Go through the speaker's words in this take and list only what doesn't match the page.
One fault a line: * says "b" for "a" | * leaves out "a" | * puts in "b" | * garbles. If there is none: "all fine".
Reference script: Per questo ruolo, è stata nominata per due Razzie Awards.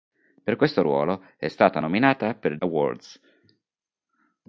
* leaves out "due Razzie"